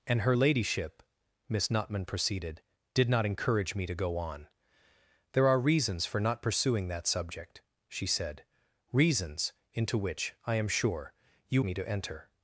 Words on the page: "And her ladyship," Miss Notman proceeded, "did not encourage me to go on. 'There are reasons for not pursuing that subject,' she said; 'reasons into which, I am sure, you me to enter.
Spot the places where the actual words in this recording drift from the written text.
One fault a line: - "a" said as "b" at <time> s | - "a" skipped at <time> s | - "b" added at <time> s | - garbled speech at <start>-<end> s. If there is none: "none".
none